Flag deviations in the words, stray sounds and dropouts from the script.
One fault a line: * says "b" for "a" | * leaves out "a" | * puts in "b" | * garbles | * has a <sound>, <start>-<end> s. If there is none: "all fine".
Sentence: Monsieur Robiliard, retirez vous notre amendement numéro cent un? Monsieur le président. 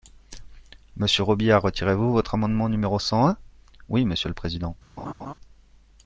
* says "votre" for "notre"
* puts in "Oui"
* has a laugh, 5.0-5.3 s